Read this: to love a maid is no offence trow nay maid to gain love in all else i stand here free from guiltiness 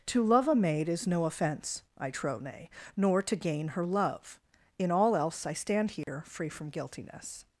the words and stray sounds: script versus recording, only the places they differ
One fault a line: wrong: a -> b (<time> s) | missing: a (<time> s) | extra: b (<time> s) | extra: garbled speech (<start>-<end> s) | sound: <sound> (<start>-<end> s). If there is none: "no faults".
extra: i (2.0 s)
wrong: maid -> nor (3.0 s)
extra: her (3.7 s)
sound: dropout (6.0-6.1 s)